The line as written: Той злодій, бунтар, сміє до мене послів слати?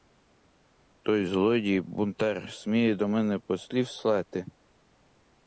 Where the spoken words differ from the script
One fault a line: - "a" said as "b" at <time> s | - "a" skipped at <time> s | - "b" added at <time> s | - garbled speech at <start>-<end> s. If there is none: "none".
none